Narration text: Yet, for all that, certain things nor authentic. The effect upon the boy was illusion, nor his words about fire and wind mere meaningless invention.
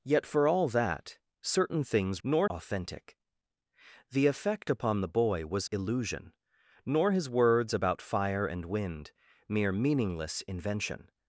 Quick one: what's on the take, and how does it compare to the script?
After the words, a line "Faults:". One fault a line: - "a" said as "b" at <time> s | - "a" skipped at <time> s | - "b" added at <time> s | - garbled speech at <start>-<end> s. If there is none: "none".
Yet, for all that, certain things nor authentic. The effect upon the boy was illusion, nor his words about fire and wind mere meaningless invention.
Faults:
none